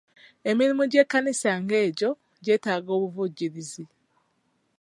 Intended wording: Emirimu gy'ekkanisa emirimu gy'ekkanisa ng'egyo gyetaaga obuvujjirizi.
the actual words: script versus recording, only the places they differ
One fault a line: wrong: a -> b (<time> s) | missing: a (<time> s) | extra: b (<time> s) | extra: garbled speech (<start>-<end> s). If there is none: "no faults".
missing: emirimu gy'ekkanisa (1.5 s)